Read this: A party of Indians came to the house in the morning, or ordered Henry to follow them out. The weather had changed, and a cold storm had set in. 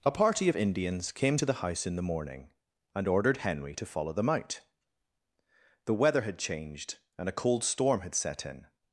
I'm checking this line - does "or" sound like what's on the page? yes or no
no